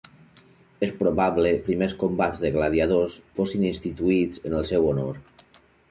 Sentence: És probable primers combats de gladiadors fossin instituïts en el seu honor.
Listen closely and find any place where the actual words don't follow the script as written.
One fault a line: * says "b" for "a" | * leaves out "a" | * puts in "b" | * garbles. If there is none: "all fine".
all fine